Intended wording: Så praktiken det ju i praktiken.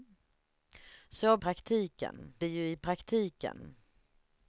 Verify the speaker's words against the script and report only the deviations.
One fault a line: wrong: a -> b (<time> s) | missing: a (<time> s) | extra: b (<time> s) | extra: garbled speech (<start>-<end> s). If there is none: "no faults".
no faults